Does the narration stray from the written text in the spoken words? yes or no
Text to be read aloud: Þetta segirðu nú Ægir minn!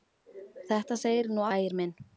no